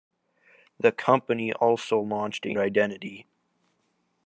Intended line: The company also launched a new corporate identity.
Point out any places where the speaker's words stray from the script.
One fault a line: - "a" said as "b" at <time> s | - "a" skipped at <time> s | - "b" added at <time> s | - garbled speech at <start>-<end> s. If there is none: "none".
- "new corporate" skipped at 2.6 s